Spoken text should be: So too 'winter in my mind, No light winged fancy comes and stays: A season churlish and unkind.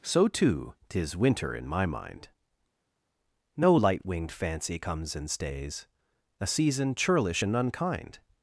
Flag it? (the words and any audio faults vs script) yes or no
yes